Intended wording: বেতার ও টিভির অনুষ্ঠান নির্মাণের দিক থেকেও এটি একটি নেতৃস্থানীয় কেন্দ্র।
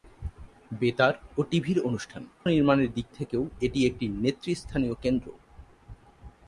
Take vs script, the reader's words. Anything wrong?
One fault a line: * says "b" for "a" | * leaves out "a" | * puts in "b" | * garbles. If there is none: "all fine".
all fine